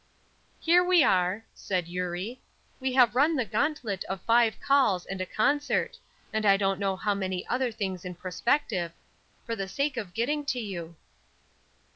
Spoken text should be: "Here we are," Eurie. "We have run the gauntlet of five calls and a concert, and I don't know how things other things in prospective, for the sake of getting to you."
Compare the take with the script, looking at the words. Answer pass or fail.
fail